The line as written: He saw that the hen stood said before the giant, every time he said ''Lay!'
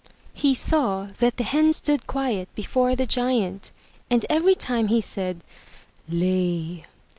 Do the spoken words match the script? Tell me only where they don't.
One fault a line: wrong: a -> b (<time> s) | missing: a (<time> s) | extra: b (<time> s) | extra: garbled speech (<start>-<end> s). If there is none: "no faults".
wrong: said -> quiet (2.1 s)
extra: and (4.1 s)